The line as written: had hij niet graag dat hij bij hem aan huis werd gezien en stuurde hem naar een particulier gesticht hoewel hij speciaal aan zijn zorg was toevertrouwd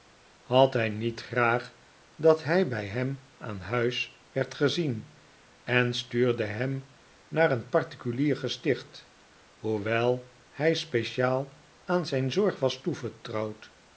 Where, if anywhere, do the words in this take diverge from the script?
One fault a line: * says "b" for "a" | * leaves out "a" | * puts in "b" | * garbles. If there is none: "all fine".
all fine